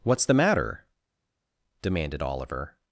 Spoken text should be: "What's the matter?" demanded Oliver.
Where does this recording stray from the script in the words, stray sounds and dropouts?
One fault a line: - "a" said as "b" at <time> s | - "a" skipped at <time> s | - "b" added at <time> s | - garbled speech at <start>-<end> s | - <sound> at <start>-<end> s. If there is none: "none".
none